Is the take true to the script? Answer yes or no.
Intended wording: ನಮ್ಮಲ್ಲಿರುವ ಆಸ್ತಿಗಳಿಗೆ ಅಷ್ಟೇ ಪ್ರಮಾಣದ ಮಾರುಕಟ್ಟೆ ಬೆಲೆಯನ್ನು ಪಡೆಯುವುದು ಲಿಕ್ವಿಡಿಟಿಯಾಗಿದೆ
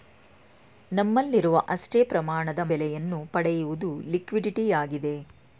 no